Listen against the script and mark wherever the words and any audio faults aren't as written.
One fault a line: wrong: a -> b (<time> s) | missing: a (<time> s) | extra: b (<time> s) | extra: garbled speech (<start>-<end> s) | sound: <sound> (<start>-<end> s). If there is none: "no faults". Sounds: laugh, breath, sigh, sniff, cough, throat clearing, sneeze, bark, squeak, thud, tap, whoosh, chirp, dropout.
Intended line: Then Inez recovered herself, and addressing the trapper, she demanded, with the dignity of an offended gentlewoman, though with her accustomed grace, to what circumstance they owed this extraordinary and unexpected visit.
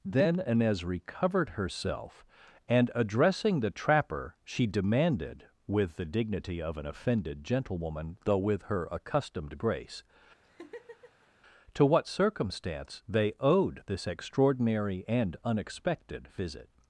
sound: laugh (10.4-11.3 s)